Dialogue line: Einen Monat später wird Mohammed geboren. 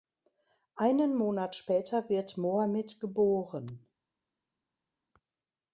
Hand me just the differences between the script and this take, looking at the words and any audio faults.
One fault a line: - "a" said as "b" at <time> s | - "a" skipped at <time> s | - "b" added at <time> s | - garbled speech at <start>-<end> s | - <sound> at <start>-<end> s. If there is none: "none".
none